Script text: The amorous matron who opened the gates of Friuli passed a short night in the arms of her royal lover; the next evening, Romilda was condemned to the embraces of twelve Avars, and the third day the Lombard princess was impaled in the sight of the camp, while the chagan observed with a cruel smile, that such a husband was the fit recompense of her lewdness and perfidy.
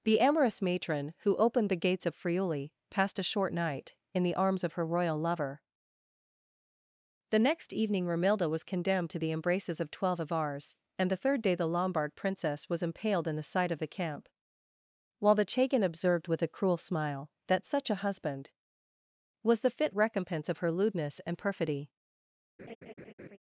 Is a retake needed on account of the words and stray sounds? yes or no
yes